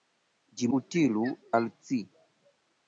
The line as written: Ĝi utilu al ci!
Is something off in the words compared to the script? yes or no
no